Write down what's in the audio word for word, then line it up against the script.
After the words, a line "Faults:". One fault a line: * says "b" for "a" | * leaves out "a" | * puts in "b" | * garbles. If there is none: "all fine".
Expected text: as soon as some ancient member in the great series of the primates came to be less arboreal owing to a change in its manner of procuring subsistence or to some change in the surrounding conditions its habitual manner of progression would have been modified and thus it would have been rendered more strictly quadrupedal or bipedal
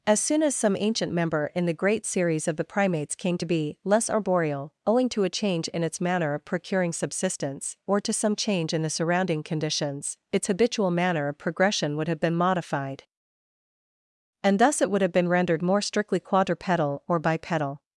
as soon as some ancient member in the great series of the primates came to be less arboreal owing to a change in its manner of procuring subsistence or to some change in the surrounding conditions its habitual manner of progression would have been modified and thus it would have been rendered more strictly quadrupedal or bipedal
Faults:
all fine